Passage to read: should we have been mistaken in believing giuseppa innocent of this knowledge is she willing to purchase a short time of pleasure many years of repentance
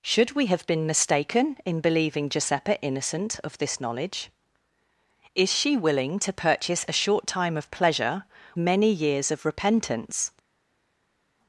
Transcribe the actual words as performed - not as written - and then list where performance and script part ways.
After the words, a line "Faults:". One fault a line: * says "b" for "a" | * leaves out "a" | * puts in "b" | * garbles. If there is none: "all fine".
should we have been mistaken in believing giuseppa innocent of this knowledge is she willing to purchase a short time of pleasure many years of repentance
Faults:
all fine